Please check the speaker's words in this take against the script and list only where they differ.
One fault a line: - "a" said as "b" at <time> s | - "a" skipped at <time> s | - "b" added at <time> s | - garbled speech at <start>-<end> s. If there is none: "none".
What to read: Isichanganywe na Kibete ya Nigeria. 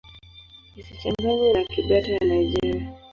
none